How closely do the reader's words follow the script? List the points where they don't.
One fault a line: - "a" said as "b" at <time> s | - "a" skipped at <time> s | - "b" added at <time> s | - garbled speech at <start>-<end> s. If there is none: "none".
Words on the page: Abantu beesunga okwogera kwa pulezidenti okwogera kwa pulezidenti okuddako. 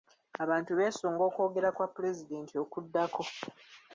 - "okwogera kwa pulezidenti" skipped at 2.5 s